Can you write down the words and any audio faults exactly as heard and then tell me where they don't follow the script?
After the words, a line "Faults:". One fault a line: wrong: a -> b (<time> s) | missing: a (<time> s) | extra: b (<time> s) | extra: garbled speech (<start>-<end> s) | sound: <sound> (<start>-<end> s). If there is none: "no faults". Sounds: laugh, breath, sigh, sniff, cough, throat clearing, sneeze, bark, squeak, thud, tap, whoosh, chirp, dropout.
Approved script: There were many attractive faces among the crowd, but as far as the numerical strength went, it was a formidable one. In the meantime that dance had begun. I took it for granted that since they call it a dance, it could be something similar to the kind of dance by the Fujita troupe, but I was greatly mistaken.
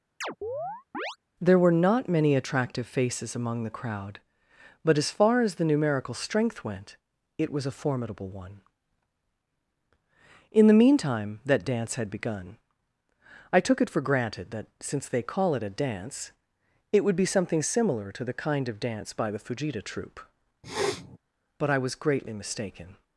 There were not many attractive faces among the crowd, but as far as the numerical strength went, it was a formidable one. In the meantime that dance had begun. I took it for granted that since they call it a dance, it would be something similar to the kind of dance by the Fujita troupe, but I was greatly mistaken.
Faults:
sound: chirp (0.2-1.2 s)
extra: not (1.7 s)
wrong: could -> would (17.0 s)
sound: sniff (20.6-21.2 s)